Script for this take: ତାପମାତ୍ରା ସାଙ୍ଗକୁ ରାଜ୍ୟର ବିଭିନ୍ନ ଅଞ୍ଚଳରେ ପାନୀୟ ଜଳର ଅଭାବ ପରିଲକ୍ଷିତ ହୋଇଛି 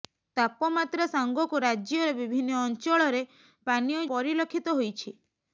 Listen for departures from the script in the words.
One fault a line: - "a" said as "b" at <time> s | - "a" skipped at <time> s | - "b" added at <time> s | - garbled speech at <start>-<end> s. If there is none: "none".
- "ଜଳର ଅଭାବ" skipped at 4.0 s